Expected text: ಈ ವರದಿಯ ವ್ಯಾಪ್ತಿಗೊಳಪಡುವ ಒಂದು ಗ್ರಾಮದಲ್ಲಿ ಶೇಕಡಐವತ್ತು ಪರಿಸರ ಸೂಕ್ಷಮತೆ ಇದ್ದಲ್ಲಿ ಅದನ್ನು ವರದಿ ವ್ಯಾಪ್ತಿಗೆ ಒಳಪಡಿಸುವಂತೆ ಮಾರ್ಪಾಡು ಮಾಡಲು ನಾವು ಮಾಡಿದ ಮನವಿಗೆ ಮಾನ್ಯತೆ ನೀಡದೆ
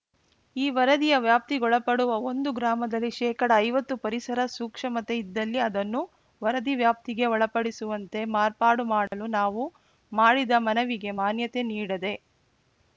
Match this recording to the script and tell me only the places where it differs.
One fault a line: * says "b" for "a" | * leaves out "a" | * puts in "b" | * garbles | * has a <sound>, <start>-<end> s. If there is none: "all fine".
* has a dropout, 9.1-9.1 s